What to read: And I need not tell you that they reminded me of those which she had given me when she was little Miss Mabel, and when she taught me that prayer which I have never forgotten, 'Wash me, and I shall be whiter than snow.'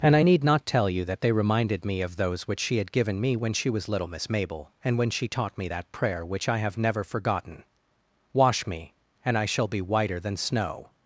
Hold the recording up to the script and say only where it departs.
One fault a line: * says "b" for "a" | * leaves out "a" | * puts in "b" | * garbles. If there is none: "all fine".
all fine